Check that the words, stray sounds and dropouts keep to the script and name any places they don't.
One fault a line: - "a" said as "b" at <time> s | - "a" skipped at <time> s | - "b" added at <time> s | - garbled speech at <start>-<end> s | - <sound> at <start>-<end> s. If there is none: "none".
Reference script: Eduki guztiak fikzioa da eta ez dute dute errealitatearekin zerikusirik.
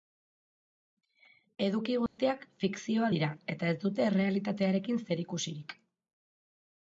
- dropout at 2.1-2.2 s
- "da" said as "dira" at 3.1 s
- "dute" skipped at 4.1 s